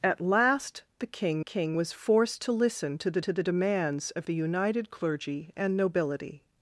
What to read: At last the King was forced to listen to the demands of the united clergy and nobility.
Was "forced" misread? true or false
false